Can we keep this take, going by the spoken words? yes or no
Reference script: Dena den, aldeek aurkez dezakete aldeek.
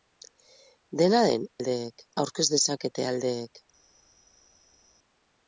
yes